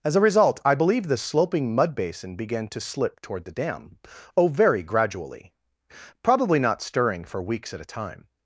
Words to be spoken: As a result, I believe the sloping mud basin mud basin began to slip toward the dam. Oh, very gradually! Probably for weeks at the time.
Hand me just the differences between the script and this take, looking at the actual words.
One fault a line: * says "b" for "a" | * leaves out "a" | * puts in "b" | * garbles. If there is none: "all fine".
* leaves out "mud basin"
* puts in "not stirring"
* says "a" for "the"